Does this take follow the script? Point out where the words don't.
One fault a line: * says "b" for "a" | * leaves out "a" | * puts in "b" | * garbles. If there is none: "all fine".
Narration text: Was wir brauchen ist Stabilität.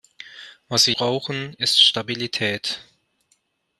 all fine